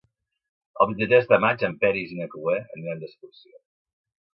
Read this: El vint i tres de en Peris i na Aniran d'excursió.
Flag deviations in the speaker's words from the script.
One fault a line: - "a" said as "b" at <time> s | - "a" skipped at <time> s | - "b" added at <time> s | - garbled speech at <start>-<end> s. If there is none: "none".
- "maig" added at 1.4 s
- "Cloè" added at 2.4 s